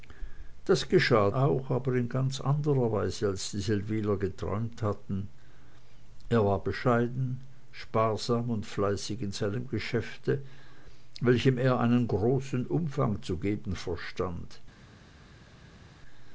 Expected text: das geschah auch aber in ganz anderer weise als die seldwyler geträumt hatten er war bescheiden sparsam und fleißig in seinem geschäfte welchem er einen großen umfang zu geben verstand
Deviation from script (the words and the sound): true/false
false